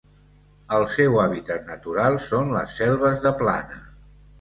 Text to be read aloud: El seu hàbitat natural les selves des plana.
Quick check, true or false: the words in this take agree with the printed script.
false